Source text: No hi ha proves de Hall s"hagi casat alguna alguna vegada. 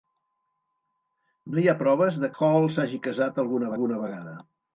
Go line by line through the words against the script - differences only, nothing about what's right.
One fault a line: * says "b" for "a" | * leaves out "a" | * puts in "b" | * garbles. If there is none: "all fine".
all fine